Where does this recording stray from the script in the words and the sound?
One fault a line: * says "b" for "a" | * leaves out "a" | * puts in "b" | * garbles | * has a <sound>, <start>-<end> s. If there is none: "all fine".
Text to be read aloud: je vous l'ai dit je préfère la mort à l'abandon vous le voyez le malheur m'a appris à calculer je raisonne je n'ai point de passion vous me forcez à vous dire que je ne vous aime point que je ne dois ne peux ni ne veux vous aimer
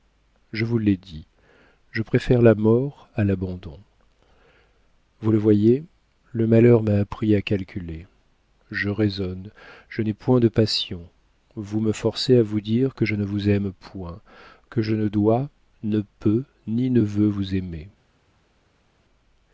all fine